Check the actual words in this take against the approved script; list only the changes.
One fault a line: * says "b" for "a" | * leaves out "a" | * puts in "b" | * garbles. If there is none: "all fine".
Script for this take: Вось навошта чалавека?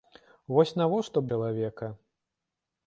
all fine